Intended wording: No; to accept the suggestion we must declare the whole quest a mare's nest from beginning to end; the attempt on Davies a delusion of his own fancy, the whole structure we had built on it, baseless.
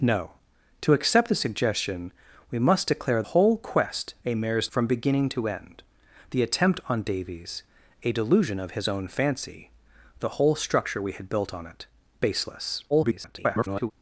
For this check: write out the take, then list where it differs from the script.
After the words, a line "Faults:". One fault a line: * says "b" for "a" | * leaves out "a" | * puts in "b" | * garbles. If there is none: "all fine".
No; to accept the suggestion we must declare whole quest a mare's from beginning to end; the attempt on Davies a delusion of his own fancy, the whole structure we had built on it, baseless. [garbled]
Faults:
* leaves out "the"
* leaves out "nest"
* garbles